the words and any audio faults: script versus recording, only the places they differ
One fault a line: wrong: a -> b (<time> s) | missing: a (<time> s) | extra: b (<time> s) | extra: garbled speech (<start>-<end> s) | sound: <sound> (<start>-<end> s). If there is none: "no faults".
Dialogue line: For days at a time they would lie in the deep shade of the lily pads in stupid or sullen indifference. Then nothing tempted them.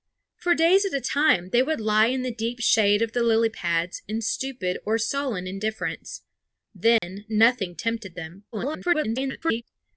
sound: dropout (7.0-7.0 s)
extra: garbled speech (8.5-9.6 s)